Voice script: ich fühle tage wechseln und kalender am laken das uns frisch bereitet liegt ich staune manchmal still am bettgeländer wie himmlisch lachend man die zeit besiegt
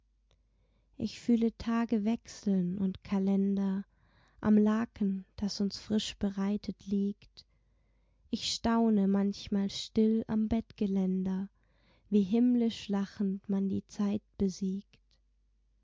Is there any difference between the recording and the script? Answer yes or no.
no